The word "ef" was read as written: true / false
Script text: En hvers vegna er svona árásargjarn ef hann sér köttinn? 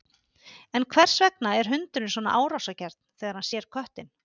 false